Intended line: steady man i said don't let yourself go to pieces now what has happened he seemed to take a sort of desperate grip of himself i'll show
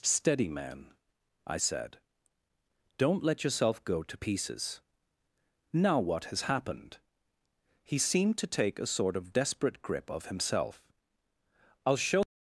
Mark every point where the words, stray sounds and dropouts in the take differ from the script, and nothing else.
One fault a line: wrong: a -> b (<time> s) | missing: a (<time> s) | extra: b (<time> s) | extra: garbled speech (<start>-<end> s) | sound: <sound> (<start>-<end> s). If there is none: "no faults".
no faults